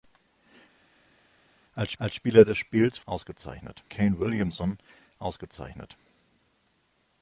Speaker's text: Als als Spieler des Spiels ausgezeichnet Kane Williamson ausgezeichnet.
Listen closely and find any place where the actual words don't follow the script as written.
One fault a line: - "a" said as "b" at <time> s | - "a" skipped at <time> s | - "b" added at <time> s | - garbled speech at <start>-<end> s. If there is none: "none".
none